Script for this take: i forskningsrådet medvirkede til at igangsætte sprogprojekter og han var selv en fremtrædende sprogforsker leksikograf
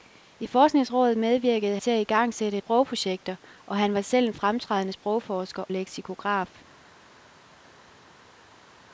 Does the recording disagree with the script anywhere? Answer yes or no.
no